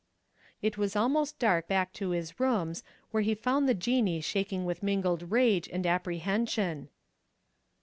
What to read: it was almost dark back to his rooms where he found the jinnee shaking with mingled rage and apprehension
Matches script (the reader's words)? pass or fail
pass